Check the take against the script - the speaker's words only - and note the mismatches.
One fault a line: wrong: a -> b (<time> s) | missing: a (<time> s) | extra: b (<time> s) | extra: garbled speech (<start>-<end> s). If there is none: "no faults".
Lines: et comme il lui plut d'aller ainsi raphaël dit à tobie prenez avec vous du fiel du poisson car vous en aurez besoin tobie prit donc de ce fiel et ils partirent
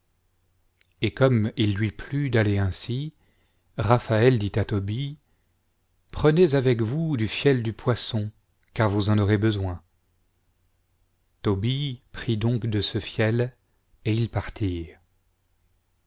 no faults